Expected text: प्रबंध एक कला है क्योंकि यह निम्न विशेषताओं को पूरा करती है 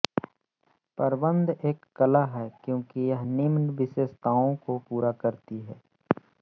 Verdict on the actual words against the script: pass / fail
pass